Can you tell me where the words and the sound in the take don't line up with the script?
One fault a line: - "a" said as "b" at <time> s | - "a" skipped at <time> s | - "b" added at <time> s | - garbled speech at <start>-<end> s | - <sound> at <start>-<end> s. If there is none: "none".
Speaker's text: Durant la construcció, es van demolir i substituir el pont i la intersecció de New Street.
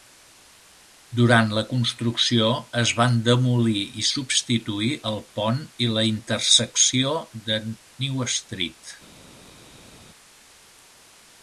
none